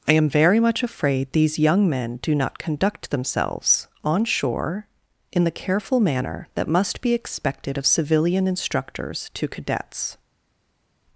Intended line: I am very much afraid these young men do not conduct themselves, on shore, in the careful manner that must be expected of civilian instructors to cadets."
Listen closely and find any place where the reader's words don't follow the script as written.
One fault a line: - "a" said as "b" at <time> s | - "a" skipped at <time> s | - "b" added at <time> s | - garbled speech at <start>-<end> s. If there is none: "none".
none